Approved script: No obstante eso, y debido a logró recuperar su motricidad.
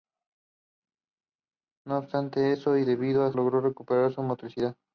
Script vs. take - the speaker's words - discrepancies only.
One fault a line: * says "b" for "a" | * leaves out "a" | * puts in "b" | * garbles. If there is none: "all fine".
all fine